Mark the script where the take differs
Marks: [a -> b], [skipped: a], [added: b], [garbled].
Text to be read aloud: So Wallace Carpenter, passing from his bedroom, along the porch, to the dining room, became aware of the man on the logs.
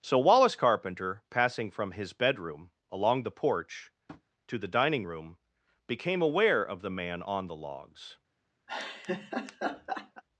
So Wallace Carpenter, passing from his bedroom, along the porch, to the dining room, became aware of the man on the logs.